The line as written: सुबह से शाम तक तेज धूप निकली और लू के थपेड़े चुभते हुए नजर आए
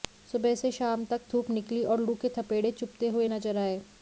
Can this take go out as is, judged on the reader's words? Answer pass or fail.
fail